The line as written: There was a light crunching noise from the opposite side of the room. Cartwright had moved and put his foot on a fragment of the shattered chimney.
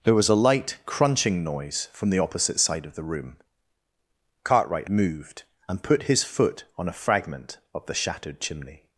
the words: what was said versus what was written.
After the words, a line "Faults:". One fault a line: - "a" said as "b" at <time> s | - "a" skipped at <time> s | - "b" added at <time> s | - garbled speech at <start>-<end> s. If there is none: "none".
There was a light crunching noise from the opposite side of the room. Cartwright moved and put his foot on a fragment of the shattered chimney.
Faults:
- "had" skipped at 4.9 s